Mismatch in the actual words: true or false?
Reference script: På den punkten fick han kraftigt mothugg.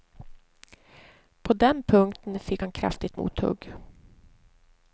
false